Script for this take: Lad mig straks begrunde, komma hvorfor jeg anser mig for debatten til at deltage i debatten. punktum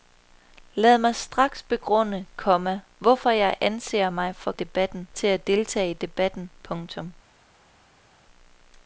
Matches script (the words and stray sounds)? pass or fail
pass